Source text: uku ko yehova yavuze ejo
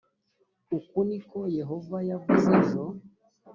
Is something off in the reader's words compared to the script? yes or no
yes